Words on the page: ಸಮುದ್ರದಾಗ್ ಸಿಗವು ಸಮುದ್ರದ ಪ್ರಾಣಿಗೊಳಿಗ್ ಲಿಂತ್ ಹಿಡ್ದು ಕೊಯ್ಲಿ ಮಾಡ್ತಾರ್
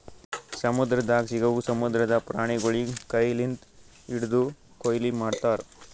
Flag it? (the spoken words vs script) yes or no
yes